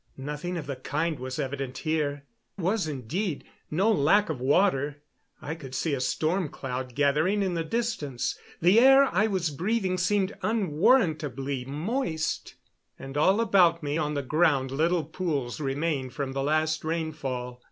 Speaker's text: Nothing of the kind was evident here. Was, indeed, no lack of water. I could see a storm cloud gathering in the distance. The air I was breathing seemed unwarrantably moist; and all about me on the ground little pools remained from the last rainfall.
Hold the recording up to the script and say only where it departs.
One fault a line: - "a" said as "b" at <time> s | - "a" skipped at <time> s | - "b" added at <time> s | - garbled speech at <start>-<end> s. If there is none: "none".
none